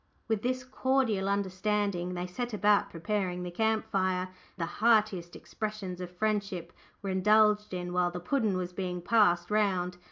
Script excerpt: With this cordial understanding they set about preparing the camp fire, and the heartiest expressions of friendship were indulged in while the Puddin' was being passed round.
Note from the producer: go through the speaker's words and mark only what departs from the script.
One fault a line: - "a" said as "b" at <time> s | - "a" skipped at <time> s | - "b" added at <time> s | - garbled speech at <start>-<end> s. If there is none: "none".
- "and" skipped at 4.3 s